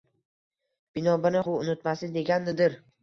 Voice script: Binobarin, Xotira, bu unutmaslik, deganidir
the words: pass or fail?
fail